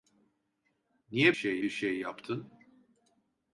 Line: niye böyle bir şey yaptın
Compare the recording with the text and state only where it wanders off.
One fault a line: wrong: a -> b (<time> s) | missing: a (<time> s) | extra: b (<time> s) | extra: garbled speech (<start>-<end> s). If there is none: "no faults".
wrong: böyle -> şey (1.3 s)